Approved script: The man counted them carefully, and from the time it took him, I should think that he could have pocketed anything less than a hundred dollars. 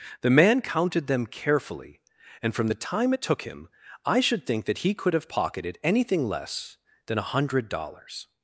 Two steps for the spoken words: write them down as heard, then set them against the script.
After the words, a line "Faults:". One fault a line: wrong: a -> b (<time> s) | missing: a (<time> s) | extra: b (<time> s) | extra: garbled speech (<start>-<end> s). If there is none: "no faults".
The man counted them carefully, and from the time it took him, I should think that he could have pocketed anything less than a hundred dollars.
Faults:
no faults